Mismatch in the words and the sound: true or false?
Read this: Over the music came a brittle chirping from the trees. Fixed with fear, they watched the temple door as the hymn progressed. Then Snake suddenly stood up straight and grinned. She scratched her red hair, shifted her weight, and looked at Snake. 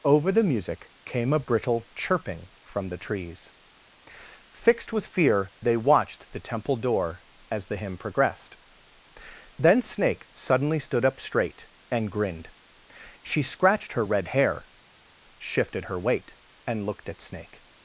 false